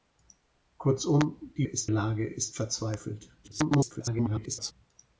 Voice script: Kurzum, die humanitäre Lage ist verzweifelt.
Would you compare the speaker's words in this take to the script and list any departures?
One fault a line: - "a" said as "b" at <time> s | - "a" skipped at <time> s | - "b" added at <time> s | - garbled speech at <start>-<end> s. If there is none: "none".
- "humanitäre" said as "ist" at 1.6 s
- garbled speech at 3.4-4.7 s